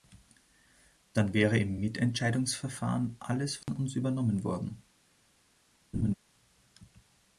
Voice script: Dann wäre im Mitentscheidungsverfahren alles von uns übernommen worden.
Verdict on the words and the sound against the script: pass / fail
fail